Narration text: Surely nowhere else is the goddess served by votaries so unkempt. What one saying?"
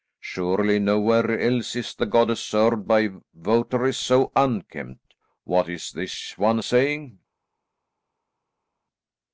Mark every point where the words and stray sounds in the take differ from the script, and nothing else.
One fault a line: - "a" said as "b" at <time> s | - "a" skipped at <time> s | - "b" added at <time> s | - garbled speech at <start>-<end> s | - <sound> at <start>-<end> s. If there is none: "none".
- "is this" added at 5.7 s